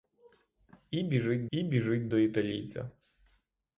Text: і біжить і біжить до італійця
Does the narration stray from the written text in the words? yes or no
no